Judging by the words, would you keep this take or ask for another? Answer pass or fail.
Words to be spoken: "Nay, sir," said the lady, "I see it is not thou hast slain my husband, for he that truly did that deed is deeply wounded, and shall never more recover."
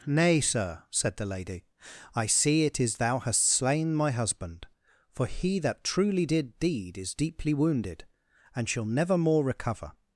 fail